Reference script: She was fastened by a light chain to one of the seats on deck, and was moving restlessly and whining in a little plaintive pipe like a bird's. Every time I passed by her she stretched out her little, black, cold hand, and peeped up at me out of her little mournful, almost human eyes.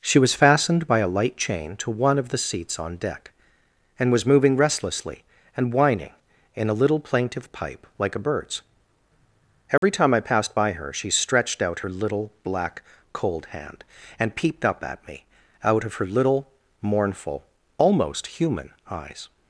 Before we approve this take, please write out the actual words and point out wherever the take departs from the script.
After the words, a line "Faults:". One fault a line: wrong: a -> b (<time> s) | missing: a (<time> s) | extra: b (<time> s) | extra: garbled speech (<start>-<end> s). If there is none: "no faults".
She was fastened by a light chain to one of the seats on deck, and was moving restlessly and whining in a little plaintive pipe like a bird's. Every time I passed by her she stretched out her little, black, cold hand, and peeped up at me out of her little mournful, almost human eyes.
Faults:
no faults